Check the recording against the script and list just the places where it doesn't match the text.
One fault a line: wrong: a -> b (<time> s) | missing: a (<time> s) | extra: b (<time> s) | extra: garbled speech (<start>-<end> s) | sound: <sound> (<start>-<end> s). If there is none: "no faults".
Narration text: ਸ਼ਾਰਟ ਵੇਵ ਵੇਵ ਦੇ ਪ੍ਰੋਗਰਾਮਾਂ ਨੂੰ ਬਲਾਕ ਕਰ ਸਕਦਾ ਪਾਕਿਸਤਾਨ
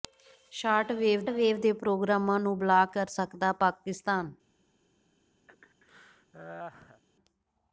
sound: laugh (5.5-7.0 s)